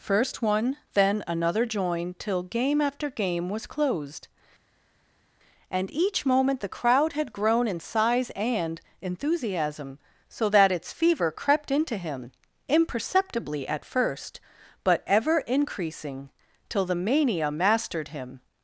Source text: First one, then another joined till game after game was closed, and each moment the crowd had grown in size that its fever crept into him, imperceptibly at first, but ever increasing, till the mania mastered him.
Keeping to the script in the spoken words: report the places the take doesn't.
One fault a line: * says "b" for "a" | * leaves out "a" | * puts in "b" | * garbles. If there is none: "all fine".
* puts in "and enthusiasm so"